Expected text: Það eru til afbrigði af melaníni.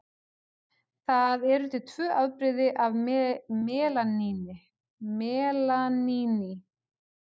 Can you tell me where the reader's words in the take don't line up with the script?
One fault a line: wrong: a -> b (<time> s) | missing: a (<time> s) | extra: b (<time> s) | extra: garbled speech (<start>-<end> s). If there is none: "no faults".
extra: tvö (1.9 s)